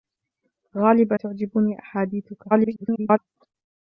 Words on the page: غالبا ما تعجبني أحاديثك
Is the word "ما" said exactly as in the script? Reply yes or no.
no